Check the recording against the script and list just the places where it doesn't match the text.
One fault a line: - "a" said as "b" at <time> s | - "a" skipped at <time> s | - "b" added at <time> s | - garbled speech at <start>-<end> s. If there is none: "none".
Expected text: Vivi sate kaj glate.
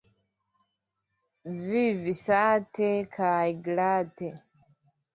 none